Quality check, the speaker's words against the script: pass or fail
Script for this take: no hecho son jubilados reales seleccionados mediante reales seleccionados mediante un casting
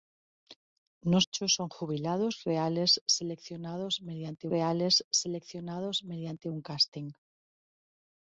pass